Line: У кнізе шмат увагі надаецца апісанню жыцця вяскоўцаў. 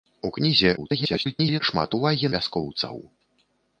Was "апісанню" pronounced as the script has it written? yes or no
no